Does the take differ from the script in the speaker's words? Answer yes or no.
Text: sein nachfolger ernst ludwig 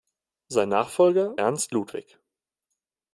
no